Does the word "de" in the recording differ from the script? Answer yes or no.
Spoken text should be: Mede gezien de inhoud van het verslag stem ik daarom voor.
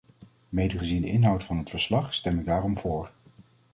no